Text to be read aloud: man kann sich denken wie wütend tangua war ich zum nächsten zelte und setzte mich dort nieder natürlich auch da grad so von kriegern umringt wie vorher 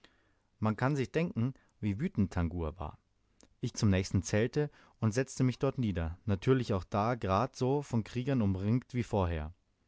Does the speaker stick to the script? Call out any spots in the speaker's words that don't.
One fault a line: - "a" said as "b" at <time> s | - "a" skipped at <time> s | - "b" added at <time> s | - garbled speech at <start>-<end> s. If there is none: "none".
none